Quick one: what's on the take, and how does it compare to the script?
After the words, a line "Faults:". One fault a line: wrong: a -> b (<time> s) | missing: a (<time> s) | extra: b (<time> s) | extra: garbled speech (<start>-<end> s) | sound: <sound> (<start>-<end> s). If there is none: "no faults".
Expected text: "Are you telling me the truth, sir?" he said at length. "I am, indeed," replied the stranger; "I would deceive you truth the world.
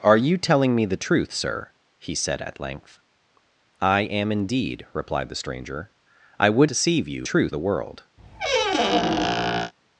"Are you telling me the truth, sir?" he said at length. "I am, indeed," replied the stranger; "I would deceive you truth the world.
Faults:
sound: squeak (8.2-9.7 s)